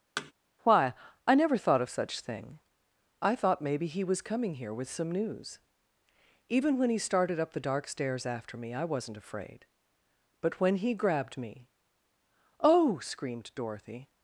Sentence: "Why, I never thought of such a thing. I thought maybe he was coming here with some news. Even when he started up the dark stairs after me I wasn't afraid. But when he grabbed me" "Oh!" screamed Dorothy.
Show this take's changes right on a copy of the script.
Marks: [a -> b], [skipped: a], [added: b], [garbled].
"Why, I never thought of such [skipped: a] thing. I thought maybe he was coming here with some news. Even when he started up the dark stairs after me I wasn't afraid. But when he grabbed me" "Oh!" screamed Dorothy.